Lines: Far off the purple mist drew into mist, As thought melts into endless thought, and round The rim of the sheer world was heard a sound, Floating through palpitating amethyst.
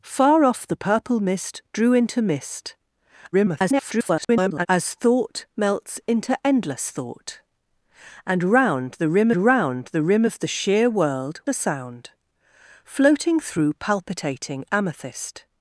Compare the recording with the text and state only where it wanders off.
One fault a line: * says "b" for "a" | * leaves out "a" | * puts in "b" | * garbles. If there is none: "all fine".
* garbles
* puts in "round The rim"
* leaves out "was heard"